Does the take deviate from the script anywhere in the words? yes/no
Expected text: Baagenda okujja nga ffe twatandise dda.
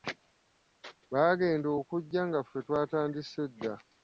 no